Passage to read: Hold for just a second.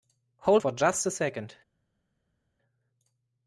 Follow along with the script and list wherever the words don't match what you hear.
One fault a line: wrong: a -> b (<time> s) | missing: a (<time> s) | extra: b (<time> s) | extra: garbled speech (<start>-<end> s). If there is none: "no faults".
no faults